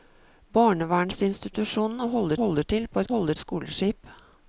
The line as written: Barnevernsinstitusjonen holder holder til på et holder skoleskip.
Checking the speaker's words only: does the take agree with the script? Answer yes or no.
yes